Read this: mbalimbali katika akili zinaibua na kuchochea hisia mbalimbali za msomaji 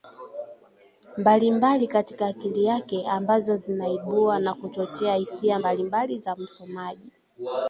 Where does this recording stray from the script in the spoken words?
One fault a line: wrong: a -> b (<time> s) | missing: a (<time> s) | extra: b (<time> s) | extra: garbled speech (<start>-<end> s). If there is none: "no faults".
extra: yake ambazo (2.6 s)